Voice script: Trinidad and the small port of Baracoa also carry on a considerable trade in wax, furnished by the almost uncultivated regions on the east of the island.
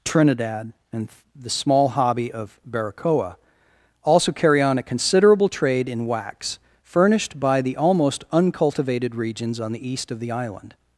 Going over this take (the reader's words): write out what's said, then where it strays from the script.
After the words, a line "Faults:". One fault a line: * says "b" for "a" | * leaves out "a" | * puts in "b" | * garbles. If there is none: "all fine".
Trinidad and the small hobby of Baracoa also carry on a considerable trade in wax, furnished by the almost uncultivated regions on the east of the island.
Faults:
* says "hobby" for "port"